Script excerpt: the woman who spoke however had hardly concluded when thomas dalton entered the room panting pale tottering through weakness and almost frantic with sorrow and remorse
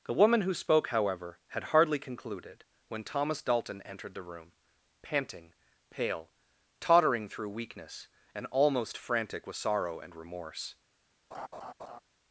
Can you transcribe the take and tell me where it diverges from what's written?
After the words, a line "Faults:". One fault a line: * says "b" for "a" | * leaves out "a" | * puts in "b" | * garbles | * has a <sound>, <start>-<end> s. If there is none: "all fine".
the woman who spoke however had hardly concluded when thomas dalton entered the room panting pale tottering through weakness and almost frantic with sorrow and remorse
Faults:
* has a laugh, 11.3-12.0 s